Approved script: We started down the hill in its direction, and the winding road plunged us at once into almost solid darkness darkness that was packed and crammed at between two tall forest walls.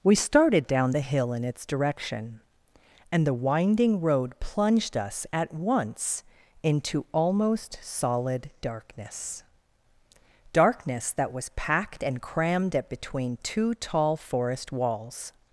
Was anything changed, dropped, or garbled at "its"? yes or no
no